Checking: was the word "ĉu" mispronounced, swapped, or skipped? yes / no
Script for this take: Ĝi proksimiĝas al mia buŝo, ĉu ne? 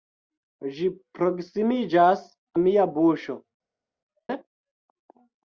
yes